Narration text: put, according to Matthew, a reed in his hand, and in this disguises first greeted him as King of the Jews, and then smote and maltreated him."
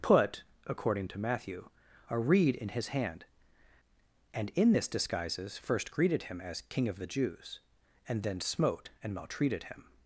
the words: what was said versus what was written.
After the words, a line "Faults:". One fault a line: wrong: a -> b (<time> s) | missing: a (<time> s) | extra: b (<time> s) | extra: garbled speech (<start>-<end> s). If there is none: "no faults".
put, according to Matthew, a reed in his hand, and in this disguises first greeted him as King of the Jews, and then smote and maltreated him."
Faults:
no faults